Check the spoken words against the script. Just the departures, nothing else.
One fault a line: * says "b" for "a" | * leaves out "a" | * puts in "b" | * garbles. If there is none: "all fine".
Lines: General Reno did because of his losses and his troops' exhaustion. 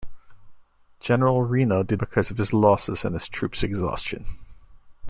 all fine